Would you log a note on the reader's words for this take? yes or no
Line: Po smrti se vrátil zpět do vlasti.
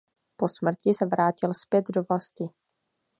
no